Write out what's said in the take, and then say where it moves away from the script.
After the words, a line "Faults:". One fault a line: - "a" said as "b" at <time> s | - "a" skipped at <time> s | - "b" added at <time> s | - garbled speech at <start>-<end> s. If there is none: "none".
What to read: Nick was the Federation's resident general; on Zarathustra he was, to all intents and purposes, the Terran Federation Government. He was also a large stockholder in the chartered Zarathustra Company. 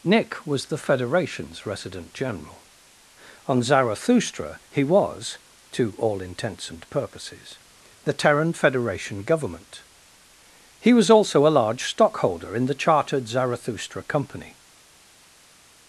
Nick was the Federation's resident general; on Zarathustra he was, to all intents and purposes, the Terran Federation Government. He was also a large stockholder in the chartered Zarathustra Company.
Faults:
none